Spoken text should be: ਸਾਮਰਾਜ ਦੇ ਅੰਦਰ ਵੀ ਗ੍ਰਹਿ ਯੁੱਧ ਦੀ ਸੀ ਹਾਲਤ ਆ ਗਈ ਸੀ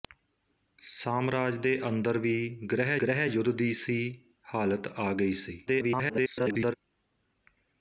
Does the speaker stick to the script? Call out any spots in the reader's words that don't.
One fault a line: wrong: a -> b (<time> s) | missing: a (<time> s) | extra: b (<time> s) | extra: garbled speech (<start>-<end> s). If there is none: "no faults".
extra: ਗ੍ਰਹਿ (3.0 s)
extra: garbled speech (5.7-6.7 s)